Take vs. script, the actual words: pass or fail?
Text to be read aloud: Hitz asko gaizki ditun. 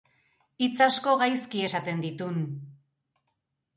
fail